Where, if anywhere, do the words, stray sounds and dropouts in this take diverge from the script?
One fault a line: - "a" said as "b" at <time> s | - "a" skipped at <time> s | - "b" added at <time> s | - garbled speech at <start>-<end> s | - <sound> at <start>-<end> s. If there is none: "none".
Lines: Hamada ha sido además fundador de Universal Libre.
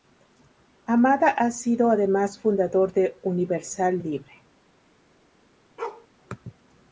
- bark at 5.8-6.1 s